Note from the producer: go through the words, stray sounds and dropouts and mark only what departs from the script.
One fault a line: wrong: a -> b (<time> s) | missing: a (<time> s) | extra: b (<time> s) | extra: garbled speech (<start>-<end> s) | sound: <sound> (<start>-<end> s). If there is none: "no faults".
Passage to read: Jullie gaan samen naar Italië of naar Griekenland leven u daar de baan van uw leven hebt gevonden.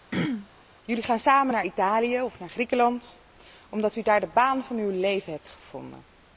sound: throat clearing (0.1-0.5 s)
wrong: leven -> omdat (3.7 s)